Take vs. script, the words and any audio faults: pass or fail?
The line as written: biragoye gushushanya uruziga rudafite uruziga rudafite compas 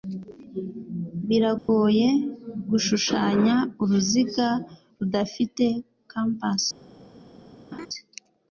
fail